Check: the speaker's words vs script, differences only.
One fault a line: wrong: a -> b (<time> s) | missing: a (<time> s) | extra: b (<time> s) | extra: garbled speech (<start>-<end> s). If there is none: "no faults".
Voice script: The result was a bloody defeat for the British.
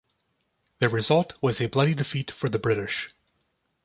no faults